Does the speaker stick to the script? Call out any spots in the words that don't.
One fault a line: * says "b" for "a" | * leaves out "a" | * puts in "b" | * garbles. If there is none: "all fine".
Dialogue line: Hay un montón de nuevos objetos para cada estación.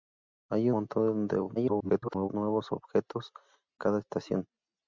* leaves out "un"
* garbles
* leaves out "para"